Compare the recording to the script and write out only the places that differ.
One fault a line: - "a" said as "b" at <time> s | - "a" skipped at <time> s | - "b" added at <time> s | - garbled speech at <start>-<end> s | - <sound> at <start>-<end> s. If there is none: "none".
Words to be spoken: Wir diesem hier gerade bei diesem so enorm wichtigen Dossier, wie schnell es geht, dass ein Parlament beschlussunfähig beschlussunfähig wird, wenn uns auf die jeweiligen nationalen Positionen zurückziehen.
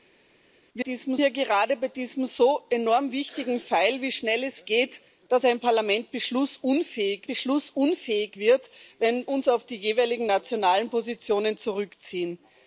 none